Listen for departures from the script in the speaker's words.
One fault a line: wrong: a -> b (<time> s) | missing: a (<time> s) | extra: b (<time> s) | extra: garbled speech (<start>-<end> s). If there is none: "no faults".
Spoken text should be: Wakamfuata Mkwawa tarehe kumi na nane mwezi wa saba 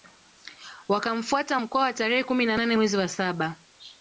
no faults